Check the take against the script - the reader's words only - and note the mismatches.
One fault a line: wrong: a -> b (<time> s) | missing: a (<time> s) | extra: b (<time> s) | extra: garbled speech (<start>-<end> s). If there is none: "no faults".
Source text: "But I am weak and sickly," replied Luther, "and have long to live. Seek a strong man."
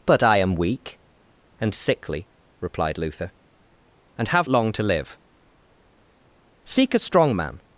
no faults